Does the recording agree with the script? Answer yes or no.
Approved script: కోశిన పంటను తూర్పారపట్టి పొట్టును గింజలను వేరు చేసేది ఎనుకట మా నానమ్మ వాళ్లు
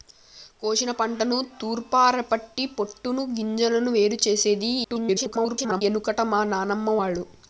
no